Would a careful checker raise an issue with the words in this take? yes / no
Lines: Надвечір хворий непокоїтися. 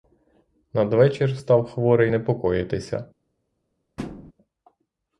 yes